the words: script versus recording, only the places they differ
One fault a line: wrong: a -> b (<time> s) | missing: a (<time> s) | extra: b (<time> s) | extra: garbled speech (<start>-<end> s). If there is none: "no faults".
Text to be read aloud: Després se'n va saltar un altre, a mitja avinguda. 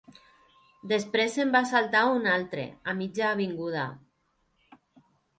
no faults